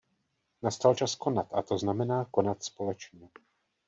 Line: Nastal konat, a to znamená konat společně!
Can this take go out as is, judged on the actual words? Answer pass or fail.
fail